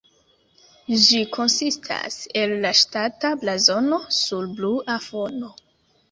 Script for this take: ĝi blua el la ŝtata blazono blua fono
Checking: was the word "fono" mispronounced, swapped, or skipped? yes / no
no